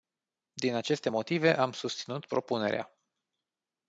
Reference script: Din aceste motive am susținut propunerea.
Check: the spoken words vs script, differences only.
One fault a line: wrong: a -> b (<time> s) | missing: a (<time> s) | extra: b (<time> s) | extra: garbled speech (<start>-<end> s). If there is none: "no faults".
no faults